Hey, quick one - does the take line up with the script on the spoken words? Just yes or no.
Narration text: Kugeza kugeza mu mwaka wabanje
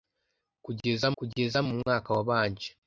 yes